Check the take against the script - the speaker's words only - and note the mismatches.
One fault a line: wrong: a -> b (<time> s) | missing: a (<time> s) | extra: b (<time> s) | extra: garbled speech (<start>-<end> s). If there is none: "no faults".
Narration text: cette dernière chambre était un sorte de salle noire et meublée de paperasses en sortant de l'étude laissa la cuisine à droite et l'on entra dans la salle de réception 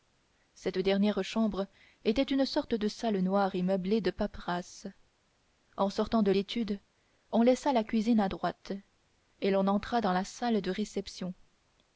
wrong: un -> une (2.2 s)
extra: on (7.3 s)